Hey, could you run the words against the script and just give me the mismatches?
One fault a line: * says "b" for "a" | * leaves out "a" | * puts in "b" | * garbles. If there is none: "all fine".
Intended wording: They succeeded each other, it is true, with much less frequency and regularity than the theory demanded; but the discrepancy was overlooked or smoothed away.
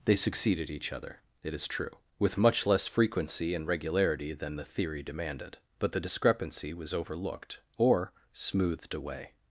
all fine